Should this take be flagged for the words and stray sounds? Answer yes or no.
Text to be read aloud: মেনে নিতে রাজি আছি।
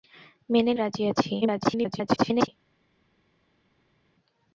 yes